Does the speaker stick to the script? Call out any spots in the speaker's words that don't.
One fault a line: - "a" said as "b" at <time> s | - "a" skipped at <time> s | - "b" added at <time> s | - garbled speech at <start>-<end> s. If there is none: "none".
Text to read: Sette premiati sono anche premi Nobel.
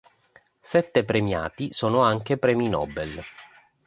none